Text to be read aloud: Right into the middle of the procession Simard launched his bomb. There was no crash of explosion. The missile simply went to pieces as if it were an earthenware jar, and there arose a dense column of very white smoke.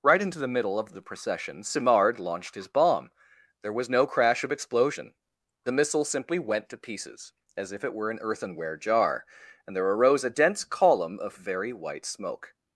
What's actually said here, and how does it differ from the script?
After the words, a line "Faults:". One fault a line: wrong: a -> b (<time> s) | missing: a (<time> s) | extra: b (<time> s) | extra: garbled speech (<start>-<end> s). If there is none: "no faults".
Right into the middle of the procession Simard launched his bomb. There was no crash of explosion. The missile simply went to pieces as if it were an earthenware jar, and there arose a dense column of very white smoke.
Faults:
no faults